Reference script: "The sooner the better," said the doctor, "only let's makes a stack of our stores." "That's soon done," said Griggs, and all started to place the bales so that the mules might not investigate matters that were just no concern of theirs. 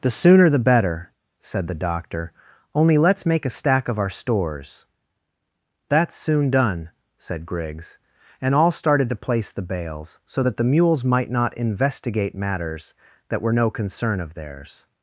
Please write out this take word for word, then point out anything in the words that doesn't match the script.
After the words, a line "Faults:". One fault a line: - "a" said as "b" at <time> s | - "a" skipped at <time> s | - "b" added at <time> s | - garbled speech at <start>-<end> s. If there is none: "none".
"The sooner the better," said the doctor, "only let's make a stack of our stores." "That's soon done," said Griggs, and all started to place the bales so that the mules might not investigate matters that were no concern of theirs.
Faults:
- "makes" said as "make" at 3.2 s
- "just" skipped at 13.5 s